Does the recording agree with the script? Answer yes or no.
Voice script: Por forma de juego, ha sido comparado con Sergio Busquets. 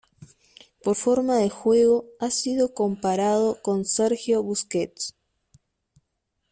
yes